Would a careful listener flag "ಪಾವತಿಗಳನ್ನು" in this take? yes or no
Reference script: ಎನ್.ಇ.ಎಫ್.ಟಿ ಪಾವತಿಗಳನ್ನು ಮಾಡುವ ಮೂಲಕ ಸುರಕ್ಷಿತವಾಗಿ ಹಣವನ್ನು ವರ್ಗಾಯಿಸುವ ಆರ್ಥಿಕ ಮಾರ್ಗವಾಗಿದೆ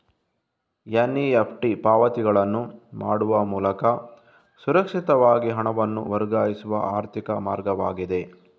no